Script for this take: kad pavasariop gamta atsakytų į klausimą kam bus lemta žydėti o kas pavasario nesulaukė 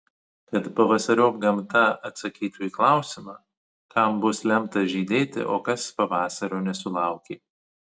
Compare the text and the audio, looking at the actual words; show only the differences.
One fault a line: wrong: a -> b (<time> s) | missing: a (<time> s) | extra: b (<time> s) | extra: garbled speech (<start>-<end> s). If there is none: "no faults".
no faults